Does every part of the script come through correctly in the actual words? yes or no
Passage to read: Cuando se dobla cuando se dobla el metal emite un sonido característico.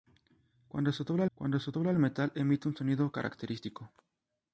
yes